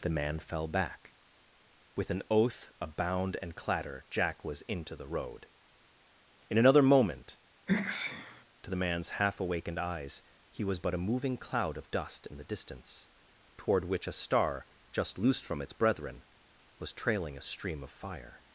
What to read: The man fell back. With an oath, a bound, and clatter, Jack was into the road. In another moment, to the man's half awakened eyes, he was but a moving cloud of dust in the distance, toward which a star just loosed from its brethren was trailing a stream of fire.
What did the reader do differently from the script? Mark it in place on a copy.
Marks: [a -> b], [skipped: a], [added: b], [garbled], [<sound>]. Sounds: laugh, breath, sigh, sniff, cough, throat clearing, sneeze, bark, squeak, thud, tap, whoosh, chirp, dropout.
The man fell back. With an oath, a bound, and clatter, Jack was into the road. In another moment, [sneeze] to the man's half awakened eyes, he was but a moving cloud of dust in the distance, toward which a star just loosed from its brethren was trailing a stream of fire.